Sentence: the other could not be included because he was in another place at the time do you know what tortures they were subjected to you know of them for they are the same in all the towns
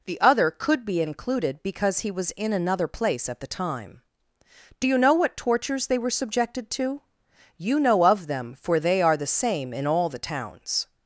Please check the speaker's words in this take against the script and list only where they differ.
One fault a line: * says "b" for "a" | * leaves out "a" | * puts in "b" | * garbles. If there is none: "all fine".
* leaves out "not"